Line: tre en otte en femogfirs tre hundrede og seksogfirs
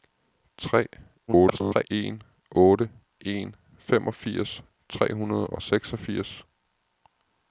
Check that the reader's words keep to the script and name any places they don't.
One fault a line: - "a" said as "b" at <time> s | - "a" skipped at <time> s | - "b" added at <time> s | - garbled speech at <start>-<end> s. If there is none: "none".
- garbled speech at 1.3-1.8 s